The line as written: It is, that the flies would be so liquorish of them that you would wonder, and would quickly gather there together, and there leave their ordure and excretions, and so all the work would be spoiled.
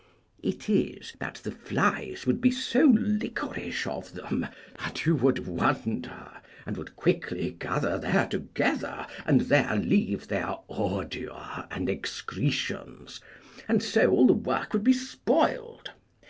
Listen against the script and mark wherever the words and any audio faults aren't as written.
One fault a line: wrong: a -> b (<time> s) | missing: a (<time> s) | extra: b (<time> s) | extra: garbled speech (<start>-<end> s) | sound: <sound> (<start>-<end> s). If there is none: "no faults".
no faults